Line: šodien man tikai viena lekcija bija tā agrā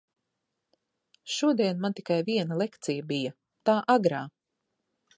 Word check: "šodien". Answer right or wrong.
right